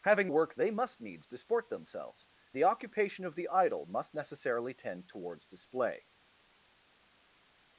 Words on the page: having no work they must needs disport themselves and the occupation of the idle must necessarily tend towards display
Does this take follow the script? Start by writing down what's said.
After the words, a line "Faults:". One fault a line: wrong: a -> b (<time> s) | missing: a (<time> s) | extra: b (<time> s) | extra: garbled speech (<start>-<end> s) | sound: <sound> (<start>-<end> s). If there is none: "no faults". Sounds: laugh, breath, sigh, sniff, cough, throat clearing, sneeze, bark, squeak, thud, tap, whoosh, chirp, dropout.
having work they must needs disport themselves the occupation of the idle must necessarily tend towards display
Faults:
missing: no (0.3 s)
missing: and (2.3 s)